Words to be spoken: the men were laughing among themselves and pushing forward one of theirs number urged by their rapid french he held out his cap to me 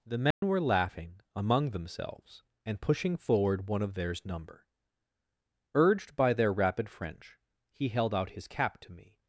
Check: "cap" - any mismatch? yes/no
no